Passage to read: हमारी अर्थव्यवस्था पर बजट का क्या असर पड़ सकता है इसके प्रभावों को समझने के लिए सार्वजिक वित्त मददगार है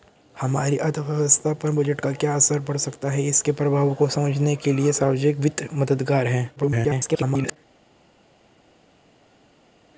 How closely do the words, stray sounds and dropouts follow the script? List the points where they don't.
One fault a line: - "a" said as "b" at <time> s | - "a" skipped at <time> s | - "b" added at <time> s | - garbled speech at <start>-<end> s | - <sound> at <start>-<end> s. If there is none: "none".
- garbled speech at 6.6-7.6 s